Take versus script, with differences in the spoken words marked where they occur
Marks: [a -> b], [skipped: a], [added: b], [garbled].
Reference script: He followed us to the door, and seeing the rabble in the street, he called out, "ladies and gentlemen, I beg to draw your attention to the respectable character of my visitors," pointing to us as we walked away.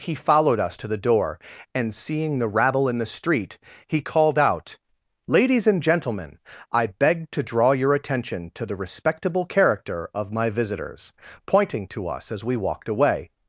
He followed us to the door, and seeing the rabble in the street, he called out, "ladies and gentlemen, I beg to draw your attention to the respectable character of my visitors," pointing to us as we walked away.